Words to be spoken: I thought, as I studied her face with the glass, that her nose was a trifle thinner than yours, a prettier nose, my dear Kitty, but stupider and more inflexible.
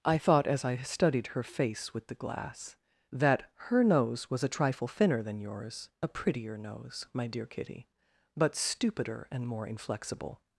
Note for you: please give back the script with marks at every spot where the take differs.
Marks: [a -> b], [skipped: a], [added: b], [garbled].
I thought, as I studied her face with the glass, that her nose was a trifle thinner than yours, a prettier nose, my dear Kitty, but stupider and more inflexible.